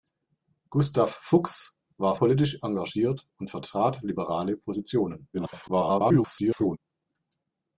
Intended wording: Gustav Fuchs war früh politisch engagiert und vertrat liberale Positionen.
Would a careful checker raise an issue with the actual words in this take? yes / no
yes